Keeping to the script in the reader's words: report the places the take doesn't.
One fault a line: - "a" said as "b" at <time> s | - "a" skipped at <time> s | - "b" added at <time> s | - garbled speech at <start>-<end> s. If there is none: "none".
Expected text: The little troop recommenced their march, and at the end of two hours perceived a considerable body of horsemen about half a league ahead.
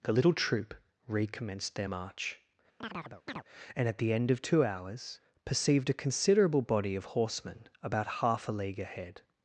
none